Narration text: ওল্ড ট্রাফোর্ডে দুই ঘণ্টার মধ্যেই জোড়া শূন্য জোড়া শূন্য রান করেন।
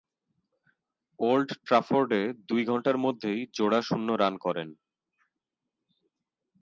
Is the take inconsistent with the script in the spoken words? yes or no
yes